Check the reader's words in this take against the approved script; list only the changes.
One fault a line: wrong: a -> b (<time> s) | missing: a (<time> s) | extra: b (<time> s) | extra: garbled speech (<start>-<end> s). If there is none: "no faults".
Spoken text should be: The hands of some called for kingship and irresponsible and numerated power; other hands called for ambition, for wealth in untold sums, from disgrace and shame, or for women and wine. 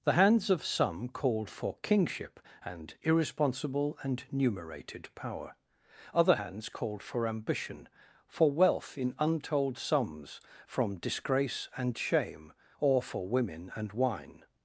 no faults